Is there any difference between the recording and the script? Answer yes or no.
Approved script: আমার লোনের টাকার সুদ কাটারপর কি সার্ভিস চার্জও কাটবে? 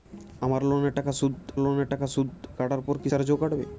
yes